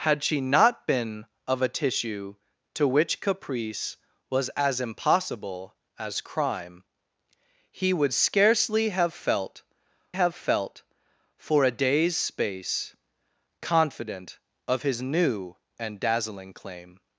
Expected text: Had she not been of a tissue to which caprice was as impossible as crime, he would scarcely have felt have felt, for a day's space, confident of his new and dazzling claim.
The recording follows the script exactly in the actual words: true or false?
true